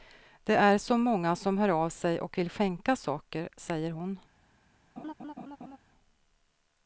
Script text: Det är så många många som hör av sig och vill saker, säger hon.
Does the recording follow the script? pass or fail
fail